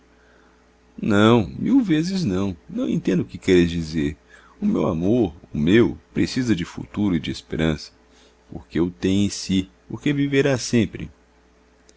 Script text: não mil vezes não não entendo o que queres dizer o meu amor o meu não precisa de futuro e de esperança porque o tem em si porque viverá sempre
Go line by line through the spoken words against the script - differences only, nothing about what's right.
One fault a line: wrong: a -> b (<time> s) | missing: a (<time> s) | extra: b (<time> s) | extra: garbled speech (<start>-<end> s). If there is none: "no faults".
missing: não (6.0 s)